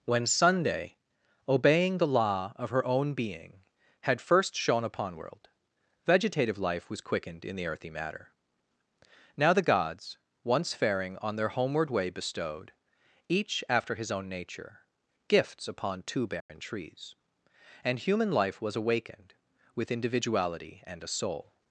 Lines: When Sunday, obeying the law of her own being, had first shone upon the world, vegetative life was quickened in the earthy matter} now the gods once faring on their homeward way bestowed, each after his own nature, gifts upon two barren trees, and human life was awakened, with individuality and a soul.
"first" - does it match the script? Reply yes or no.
yes